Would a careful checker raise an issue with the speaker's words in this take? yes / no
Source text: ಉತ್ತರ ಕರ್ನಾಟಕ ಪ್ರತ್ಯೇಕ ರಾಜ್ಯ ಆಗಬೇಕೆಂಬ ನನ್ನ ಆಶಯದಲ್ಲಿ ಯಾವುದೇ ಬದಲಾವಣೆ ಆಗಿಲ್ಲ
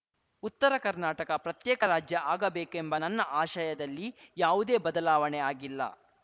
no